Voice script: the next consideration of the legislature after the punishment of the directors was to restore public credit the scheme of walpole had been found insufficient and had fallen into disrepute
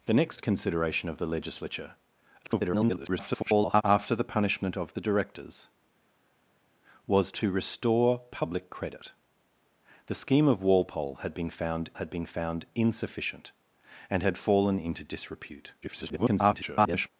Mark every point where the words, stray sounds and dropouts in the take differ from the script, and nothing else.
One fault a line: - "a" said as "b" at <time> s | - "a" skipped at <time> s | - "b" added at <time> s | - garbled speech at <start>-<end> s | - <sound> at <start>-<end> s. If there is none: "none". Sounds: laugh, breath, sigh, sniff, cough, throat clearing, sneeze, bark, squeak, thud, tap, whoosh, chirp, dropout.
- garbled speech at 2.4-3.8 s
- "had been found" added at 12.0 s
- garbled speech at 15.8-17.1 s